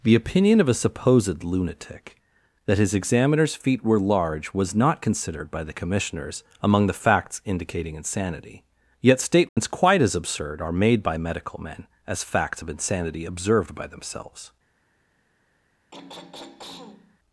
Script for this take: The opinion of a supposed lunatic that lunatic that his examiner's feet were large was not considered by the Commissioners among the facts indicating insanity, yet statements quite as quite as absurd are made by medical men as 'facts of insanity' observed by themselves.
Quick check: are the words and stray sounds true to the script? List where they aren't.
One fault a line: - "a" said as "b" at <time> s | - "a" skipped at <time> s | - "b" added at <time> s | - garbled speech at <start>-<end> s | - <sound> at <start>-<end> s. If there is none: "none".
- "lunatic that" skipped at 2.8 s
- dropout at 9.5-9.6 s
- "quite as" skipped at 10.2 s
- throat clearing at 15.9-17.2 s